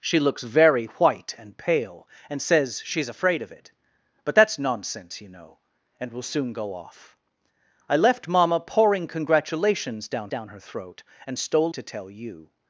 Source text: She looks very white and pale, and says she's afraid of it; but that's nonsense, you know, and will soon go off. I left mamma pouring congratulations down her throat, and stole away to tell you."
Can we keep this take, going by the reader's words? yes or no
no